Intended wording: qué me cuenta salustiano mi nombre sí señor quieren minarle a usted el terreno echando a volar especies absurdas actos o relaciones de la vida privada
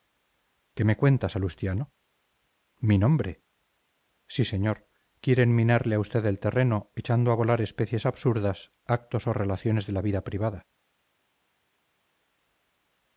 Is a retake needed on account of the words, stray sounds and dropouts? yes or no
no